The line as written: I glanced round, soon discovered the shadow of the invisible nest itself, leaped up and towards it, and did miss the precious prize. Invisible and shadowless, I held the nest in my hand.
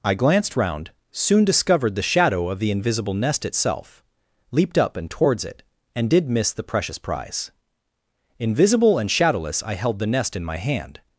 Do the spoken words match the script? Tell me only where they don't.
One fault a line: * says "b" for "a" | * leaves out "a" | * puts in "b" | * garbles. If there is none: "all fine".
all fine